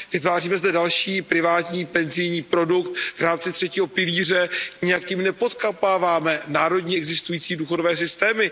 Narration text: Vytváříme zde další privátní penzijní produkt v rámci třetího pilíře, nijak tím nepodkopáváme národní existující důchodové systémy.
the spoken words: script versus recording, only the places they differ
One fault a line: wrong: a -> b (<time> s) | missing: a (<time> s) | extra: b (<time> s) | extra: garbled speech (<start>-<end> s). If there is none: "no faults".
no faults